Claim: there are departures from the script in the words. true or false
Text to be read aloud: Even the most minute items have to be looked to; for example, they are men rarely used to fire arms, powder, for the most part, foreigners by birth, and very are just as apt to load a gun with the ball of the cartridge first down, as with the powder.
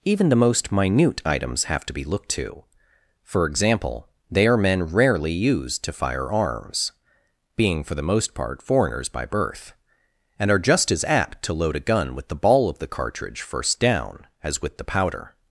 true